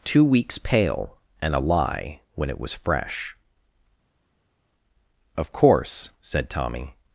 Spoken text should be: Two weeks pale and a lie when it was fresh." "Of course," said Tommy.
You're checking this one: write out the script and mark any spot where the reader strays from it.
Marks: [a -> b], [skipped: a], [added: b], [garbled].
Two weeks pale and a lie when it was fresh." "Of course," said Tommy.